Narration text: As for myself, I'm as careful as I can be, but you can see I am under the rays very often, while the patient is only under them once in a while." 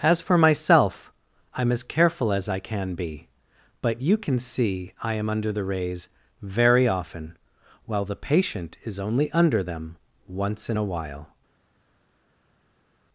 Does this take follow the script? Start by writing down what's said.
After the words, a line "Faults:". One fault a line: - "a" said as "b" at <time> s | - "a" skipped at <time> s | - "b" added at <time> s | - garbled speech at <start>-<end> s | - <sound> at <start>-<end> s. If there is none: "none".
As for myself, I'm as careful as I can be, but you can see I am under the rays very often, while the patient is only under them once in a while."
Faults:
none